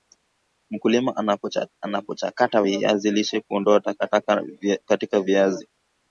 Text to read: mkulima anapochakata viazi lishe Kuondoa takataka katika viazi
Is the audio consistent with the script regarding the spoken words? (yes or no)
yes